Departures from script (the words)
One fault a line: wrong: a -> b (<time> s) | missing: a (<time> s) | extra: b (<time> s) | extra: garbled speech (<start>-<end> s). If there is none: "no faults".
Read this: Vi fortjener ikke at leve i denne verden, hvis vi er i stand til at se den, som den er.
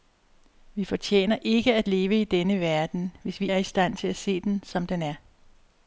no faults